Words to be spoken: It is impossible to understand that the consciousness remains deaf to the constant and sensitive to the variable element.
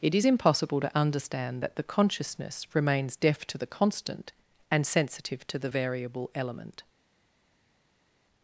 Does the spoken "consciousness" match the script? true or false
true